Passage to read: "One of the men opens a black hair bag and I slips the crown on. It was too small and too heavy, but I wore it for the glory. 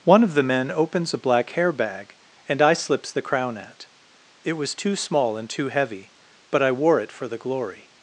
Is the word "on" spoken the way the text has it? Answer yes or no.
no